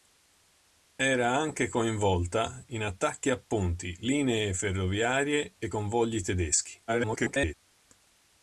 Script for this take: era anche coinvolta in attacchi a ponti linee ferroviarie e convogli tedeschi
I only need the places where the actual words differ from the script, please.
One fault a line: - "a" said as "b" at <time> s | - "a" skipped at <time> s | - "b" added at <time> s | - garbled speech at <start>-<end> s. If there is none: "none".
- garbled speech at 6.9-7.5 s